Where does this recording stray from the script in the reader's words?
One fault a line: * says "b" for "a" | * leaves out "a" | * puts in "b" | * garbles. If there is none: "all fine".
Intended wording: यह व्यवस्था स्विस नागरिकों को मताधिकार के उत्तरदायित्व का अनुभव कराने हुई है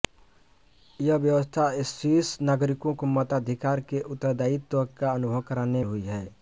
all fine